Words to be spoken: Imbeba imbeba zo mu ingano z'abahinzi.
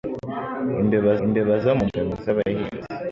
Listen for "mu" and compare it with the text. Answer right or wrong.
right